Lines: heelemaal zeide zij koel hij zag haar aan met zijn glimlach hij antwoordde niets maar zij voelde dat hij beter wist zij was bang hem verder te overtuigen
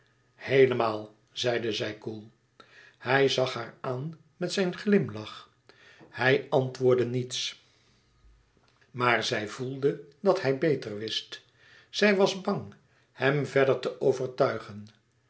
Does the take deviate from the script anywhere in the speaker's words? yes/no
no